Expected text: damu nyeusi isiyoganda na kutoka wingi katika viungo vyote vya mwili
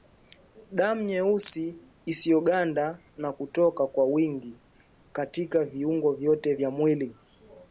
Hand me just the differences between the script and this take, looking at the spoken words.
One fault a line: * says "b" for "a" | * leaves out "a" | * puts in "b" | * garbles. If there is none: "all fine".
* puts in "kwa"